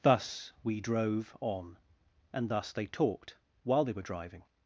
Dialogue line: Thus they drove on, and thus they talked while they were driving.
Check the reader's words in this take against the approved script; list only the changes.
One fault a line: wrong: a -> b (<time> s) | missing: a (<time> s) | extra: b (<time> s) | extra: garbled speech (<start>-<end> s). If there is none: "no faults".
wrong: they -> we (0.6 s)